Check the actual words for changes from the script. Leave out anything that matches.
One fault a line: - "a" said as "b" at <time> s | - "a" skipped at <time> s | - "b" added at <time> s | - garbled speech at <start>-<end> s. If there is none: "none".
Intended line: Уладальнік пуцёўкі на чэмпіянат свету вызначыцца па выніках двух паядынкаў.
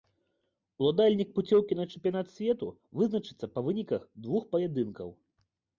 none